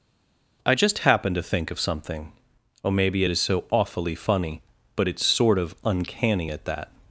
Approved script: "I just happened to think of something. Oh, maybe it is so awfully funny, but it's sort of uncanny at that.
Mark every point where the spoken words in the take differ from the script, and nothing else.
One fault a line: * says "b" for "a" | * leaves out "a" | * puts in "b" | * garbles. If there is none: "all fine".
all fine